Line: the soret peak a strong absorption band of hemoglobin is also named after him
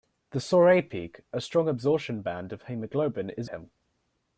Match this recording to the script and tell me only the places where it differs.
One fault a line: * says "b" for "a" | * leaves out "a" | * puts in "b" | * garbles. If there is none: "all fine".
* leaves out "also named after"